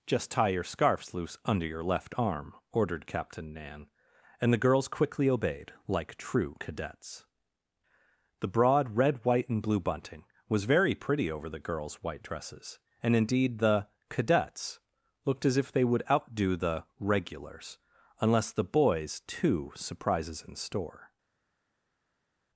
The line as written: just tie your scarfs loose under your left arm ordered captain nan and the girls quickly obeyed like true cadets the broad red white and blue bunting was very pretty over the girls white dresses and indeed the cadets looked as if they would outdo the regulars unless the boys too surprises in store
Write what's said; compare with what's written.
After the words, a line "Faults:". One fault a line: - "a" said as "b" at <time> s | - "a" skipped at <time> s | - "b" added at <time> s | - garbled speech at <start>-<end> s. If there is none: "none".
just tie your scarfs loose under your left arm ordered captain nan and the girls quickly obeyed like true cadets the broad red white and blue bunting was very pretty over the girls white dresses and indeed the cadets looked as if they would outdo the regulars unless the boys too surprises in store
Faults:
none